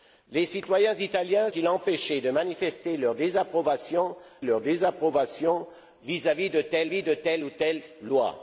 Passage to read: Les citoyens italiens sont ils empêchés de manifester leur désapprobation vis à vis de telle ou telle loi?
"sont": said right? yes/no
no